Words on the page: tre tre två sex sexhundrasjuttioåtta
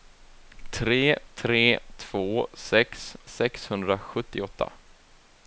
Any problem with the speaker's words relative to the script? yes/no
no